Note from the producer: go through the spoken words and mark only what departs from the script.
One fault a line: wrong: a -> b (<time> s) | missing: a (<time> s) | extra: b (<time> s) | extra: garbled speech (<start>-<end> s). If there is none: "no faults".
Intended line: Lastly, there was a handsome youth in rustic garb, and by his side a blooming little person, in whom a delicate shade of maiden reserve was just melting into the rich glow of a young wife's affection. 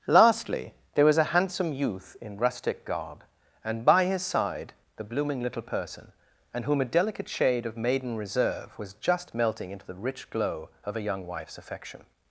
wrong: a -> the (5.0 s)
wrong: in -> and (6.5 s)